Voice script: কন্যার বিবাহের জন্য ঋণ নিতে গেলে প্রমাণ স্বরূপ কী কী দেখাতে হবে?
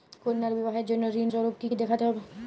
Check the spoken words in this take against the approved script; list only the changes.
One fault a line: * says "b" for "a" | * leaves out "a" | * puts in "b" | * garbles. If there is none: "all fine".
* leaves out "নিতে গেলে প্রমাণ"